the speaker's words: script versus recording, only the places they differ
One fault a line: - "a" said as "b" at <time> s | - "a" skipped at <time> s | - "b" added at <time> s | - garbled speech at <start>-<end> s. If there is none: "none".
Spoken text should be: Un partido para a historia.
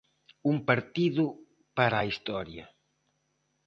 none